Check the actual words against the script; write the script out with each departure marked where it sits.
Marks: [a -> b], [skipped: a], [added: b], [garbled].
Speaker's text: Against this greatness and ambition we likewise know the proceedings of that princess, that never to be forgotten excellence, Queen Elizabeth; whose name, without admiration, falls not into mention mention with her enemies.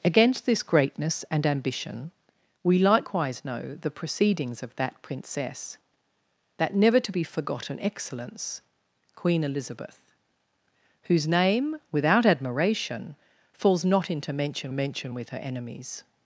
Against this greatness and ambition we likewise know the proceedings of that princess, that never to be forgotten excellence, Queen Elizabeth; whose name, without admiration, falls not into mention mention with her enemies.